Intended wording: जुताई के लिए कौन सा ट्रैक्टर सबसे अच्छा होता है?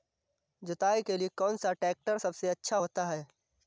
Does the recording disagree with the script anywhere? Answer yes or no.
no